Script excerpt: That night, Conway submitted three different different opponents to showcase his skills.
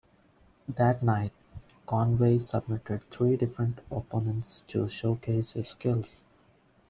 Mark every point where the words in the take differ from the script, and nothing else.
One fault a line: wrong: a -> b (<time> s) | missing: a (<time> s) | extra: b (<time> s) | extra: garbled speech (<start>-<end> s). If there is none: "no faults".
missing: different (3.8 s)